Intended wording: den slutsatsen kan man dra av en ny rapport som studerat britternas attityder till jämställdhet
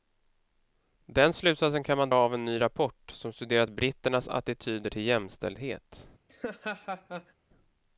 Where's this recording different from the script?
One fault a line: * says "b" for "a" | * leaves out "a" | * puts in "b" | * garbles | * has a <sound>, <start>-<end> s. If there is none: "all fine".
* leaves out "dra"
* has a laugh, 6.3-7.3 s